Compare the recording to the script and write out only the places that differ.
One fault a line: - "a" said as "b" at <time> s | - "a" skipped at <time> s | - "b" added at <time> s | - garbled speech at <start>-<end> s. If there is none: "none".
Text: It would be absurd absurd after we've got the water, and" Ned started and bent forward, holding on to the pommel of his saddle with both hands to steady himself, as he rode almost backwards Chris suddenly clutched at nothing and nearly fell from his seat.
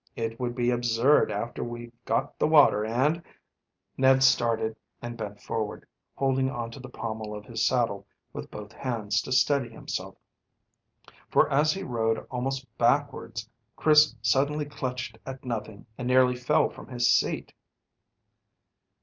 - "absurd" skipped at 1.3 s
- "for" added at 11.3 s